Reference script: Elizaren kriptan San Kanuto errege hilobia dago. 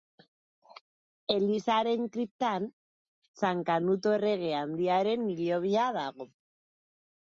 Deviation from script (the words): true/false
true